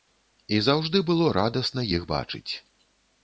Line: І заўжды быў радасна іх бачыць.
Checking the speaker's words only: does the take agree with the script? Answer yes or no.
no